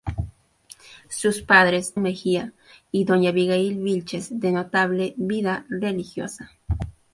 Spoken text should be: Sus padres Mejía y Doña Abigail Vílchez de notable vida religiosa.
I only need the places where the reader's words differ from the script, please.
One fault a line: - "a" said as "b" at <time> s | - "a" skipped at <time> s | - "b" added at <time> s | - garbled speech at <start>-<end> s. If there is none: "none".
none